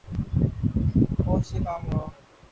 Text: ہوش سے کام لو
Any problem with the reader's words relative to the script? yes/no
no